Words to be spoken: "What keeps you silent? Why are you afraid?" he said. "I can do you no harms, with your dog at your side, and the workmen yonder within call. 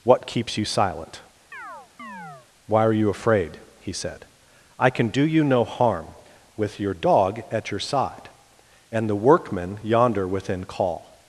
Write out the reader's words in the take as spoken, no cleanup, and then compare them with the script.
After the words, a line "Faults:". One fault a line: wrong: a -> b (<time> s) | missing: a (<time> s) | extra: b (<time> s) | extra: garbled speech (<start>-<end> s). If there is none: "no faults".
"What keeps you silent? Why are you afraid?" he said. "I can do you no harm, with your dog at your side, and the workmen yonder within call.
Faults:
wrong: harms -> harm (5.7 s)